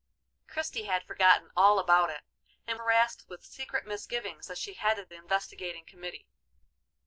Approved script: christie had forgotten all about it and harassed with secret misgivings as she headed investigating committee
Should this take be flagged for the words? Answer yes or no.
no